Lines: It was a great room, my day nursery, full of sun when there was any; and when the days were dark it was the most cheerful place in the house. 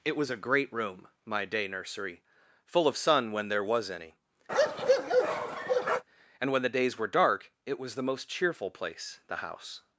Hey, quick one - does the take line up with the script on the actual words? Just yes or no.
no